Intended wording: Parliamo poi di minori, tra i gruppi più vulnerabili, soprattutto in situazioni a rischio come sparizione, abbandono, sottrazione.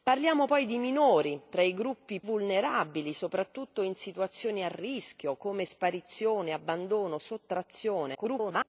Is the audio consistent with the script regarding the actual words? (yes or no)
no